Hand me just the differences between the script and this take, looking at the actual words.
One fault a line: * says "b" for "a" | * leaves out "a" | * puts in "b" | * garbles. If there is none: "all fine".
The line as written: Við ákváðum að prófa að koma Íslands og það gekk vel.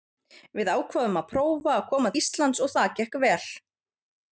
all fine